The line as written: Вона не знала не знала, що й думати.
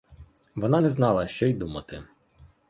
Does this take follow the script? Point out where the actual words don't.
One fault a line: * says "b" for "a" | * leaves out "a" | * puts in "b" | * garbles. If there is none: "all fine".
* leaves out "не знала"